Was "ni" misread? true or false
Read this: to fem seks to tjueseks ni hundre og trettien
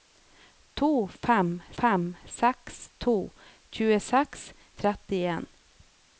true